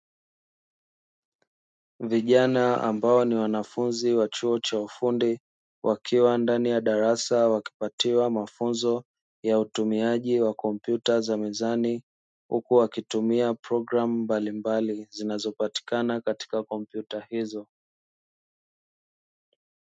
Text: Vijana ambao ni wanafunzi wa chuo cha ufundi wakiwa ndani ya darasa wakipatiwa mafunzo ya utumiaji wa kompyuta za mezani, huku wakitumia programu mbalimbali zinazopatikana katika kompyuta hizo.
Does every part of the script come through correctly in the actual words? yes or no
yes